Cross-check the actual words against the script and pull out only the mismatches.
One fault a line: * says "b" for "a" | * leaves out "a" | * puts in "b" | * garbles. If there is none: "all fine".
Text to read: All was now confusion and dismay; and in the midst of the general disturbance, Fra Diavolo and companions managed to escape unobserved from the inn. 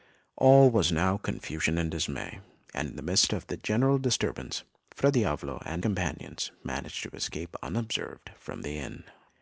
all fine